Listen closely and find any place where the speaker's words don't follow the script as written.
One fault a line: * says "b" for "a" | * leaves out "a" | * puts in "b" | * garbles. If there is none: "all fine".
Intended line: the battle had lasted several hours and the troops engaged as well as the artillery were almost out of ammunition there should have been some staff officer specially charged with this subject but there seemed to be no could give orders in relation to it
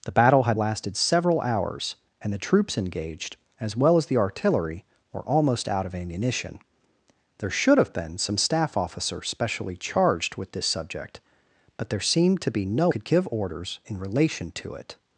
all fine